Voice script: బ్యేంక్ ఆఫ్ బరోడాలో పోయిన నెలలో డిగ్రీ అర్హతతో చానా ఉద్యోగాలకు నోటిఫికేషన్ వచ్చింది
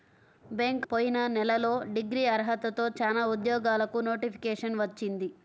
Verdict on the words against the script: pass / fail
fail